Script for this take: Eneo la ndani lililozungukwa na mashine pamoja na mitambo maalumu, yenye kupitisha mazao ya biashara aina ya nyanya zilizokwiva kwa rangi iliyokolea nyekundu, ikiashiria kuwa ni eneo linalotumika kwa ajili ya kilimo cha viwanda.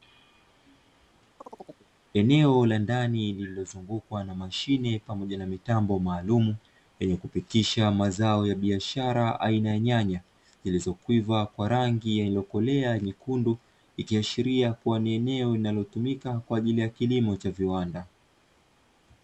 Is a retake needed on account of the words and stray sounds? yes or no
yes